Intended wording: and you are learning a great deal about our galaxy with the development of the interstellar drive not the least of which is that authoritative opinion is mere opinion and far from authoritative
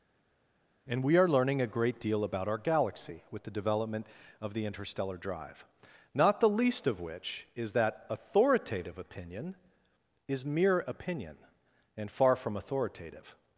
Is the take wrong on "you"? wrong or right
wrong